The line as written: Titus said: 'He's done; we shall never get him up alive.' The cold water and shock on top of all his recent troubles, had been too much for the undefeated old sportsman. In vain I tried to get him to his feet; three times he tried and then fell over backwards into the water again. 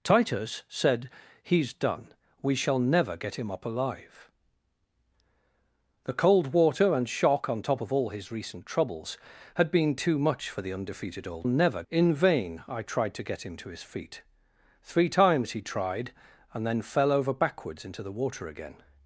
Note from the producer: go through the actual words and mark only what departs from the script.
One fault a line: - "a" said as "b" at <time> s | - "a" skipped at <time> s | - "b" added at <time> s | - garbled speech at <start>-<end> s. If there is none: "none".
- "sportsman" said as "never" at 11.5 s